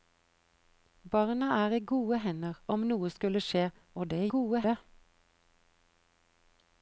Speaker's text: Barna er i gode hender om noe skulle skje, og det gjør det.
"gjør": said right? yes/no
no